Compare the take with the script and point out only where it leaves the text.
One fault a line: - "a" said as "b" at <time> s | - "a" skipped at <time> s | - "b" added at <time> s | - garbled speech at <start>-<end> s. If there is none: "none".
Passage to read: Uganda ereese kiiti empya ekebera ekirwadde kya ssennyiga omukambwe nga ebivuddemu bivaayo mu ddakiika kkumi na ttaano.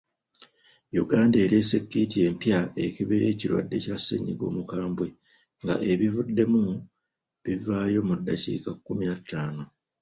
none